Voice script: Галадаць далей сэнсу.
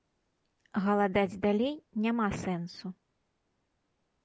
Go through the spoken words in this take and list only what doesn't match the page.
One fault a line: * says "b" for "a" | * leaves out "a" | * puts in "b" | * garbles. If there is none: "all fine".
* puts in "няма"